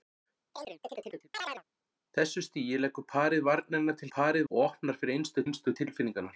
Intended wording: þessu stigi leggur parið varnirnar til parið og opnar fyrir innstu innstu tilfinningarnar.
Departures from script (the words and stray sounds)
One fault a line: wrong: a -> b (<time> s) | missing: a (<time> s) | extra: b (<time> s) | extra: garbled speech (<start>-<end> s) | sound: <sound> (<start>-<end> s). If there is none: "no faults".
sound: chirp (0.5-1.6 s)